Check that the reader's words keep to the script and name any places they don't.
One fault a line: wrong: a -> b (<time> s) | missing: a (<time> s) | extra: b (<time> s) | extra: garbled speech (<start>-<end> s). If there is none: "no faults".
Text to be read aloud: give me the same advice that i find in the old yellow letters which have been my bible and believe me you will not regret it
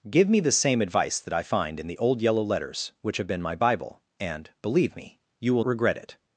missing: not (5.6 s)